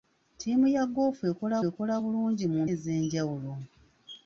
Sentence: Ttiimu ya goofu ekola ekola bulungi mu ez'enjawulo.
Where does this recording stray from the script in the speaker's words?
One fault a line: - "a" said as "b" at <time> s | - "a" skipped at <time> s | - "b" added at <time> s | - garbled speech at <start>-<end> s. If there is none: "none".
none